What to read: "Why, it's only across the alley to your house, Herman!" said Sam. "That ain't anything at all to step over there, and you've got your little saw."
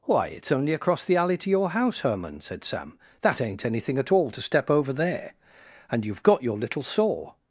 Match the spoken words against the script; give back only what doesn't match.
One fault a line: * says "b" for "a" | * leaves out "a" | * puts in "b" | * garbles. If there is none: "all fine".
all fine